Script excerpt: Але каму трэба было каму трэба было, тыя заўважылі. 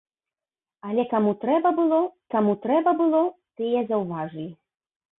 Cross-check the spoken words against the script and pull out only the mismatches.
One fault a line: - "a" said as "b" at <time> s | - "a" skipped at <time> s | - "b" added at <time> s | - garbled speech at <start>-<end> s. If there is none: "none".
none